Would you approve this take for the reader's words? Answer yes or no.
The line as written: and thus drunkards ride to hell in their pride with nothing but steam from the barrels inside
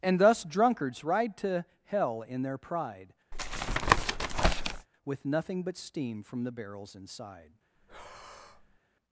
yes